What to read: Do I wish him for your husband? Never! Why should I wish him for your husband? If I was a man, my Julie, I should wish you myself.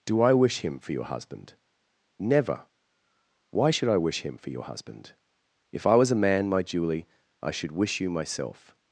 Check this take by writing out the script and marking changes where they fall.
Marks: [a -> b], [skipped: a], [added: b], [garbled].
Do I wish him for your husband? Never! Why should I wish him for your husband? If I was a man, my Julie, I should wish you myself.